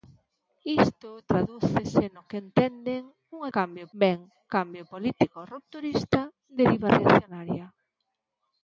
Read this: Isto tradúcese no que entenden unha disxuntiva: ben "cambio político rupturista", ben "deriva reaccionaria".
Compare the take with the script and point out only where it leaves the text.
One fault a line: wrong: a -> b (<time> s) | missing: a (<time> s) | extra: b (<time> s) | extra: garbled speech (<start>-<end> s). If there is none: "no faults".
wrong: disxuntiva -> cambio (3.6 s)
missing: ben (6.2 s)